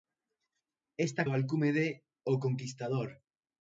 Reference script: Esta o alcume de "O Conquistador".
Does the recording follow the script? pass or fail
pass